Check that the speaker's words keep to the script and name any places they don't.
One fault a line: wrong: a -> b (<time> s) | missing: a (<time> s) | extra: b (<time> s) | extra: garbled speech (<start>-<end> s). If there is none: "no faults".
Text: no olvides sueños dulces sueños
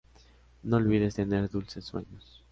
wrong: sueños -> tener (1.1 s)